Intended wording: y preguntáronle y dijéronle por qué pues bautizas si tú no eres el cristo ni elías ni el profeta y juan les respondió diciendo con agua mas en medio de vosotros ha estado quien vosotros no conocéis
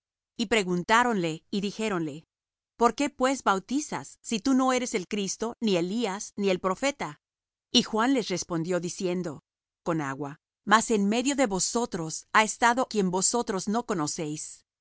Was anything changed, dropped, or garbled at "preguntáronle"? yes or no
no